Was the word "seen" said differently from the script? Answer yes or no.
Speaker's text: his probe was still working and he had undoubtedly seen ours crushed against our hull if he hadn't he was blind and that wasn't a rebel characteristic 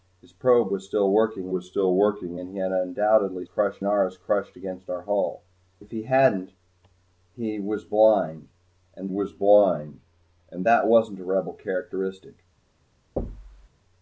yes